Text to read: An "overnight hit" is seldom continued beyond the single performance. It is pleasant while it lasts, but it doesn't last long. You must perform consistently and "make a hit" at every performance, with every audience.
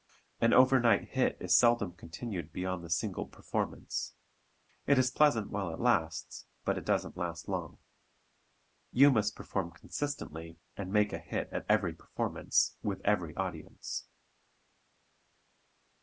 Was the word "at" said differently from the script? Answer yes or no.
no